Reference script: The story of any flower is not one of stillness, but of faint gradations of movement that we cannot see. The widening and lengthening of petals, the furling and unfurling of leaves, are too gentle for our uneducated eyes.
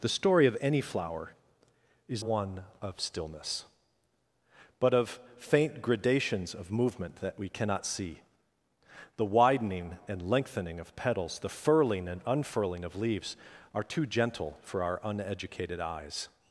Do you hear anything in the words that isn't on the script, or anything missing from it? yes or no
yes